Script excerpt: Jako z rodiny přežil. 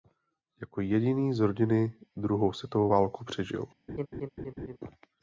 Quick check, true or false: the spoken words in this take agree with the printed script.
false